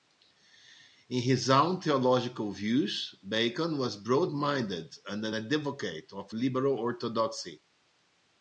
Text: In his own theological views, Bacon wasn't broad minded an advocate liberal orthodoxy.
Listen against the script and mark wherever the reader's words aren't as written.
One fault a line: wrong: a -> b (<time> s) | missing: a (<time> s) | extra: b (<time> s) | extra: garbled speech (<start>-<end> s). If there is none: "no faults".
wrong: wasn't -> was (3.8 s)
extra: and (5.1 s)
extra: of (6.1 s)